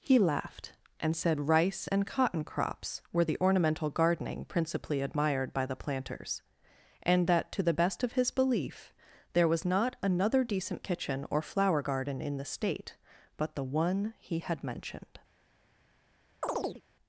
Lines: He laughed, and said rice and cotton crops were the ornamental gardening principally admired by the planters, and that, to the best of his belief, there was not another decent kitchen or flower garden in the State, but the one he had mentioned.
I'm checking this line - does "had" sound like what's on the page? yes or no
yes